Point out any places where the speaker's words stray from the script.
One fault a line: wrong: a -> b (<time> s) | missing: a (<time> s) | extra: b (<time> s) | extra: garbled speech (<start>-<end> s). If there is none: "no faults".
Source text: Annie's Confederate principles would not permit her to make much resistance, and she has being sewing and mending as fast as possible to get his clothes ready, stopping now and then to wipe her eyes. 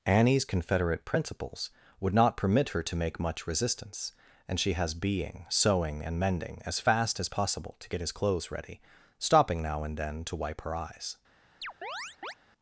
no faults